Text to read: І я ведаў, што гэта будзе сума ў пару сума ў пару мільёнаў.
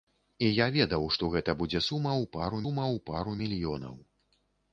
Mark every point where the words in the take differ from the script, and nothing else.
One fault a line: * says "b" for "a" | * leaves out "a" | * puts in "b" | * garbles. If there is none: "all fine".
all fine